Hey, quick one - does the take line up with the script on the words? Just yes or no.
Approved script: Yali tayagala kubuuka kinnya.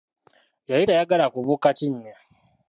yes